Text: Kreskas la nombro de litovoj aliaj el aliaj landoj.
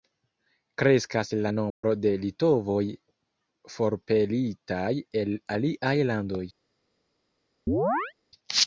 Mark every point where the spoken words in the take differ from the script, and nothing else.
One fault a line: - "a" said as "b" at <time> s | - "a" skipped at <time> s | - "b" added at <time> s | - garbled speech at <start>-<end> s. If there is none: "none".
- "aliaj" said as "forpelitaj" at 3.7 s